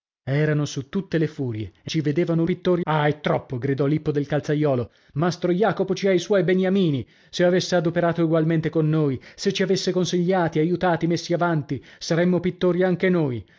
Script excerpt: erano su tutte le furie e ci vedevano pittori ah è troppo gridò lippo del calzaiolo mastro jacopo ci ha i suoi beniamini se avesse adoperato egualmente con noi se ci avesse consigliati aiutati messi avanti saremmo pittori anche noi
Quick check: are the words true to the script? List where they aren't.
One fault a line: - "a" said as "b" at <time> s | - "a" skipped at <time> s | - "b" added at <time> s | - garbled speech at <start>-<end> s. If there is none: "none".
none